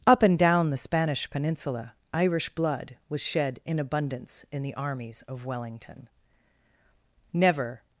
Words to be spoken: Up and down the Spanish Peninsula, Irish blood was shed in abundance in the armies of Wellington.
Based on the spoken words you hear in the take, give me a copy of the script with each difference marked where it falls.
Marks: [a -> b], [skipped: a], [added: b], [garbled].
Up and down the Spanish Peninsula, Irish blood was shed in abundance in the armies of Wellington. [added: Never]